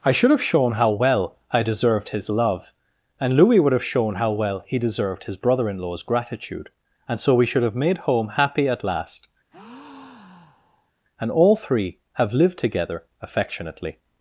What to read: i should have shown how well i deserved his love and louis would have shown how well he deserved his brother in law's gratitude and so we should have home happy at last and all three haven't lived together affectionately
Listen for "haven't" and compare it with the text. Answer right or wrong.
wrong